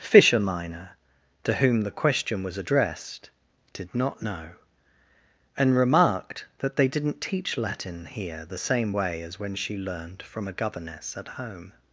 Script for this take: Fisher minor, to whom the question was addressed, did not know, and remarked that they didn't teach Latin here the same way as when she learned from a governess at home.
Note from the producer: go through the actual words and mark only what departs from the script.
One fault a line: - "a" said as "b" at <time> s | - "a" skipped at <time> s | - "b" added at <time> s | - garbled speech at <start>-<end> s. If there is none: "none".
none